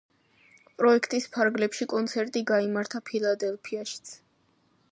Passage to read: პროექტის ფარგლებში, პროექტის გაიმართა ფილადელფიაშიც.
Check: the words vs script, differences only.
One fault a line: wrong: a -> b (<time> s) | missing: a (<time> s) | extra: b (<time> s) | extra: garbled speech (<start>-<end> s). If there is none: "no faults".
wrong: პროექტის -> კონცერტი (1.9 s)